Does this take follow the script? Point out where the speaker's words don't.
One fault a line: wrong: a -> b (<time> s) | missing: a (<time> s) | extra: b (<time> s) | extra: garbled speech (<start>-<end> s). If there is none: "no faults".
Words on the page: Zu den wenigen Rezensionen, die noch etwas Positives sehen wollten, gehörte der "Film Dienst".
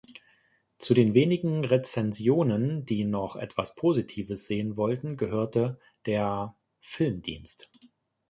no faults